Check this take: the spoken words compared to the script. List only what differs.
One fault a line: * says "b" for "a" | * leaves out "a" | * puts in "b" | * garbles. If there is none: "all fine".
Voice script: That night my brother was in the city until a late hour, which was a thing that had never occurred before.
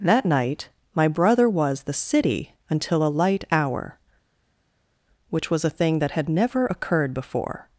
* leaves out "in"
* says "light" for "late"